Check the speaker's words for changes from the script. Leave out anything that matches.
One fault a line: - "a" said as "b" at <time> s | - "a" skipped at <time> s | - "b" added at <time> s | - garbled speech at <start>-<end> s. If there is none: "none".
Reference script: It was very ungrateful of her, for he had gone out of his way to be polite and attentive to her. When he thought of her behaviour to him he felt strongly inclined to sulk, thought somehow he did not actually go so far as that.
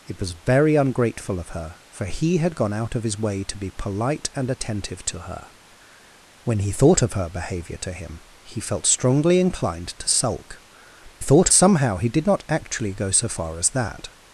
none